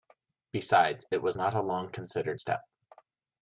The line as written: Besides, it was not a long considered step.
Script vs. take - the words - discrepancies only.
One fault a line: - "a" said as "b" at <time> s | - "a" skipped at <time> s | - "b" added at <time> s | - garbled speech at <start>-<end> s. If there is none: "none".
none